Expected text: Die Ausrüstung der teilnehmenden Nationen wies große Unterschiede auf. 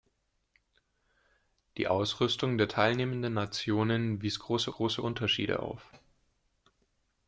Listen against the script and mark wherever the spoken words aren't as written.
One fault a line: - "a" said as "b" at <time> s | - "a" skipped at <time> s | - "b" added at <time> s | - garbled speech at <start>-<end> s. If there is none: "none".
- "große" added at 4.7 s